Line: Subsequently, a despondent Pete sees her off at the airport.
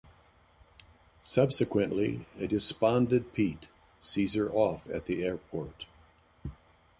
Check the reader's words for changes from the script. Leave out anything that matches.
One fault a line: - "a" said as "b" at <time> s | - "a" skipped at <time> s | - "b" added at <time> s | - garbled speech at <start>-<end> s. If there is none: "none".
none